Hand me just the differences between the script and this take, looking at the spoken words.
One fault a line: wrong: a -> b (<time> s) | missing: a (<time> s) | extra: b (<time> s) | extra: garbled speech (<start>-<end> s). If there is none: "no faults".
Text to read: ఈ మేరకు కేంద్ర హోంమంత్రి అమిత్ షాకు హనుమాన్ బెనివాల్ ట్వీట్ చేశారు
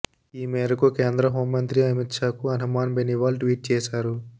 no faults